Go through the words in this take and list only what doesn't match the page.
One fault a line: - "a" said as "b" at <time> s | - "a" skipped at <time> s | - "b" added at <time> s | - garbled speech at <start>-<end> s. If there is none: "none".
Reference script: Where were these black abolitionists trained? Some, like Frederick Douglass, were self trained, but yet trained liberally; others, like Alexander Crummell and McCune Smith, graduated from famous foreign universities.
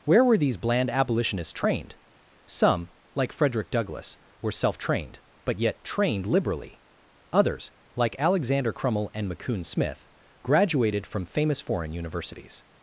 - "black" said as "bland" at 0.6 s